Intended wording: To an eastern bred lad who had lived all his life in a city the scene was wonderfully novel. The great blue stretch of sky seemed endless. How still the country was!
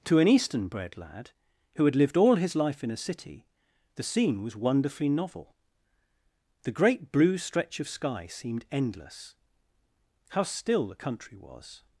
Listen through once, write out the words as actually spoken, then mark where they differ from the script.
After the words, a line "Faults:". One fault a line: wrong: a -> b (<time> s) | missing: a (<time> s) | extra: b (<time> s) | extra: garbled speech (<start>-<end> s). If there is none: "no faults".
To an eastern bred lad who had lived all his life in a city the scene was wonderfully novel. The great blue stretch of sky seemed endless. How still the country was!
Faults:
no faults